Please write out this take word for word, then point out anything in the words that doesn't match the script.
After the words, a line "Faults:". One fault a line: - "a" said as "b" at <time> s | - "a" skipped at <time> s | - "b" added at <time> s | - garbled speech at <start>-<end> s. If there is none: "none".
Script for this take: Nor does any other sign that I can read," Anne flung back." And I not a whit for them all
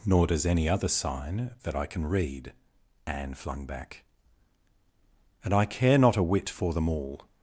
Nor does any other sign that I can read," Anne flung back." And I care not a whit for them all
Faults:
- "care" added at 5.6 s